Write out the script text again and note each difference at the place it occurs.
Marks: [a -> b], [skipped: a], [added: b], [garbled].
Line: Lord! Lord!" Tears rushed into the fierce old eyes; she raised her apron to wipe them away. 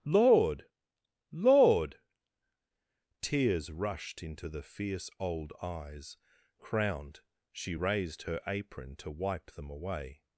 Lord! Lord!" Tears rushed into the fierce old eyes; [added: crowned] she raised her apron to wipe them away.